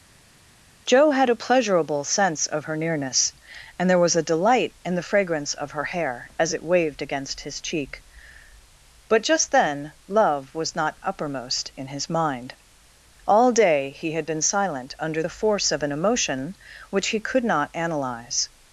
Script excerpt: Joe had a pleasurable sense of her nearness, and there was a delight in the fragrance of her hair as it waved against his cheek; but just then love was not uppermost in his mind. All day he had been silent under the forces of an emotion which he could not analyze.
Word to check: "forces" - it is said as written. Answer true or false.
false